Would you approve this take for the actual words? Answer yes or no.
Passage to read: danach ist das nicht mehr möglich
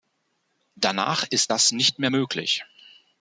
yes